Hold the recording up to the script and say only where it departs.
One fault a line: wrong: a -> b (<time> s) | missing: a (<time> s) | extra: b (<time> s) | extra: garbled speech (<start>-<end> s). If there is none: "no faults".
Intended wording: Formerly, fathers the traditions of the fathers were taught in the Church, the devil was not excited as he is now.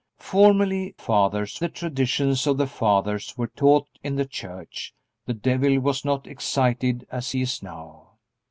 no faults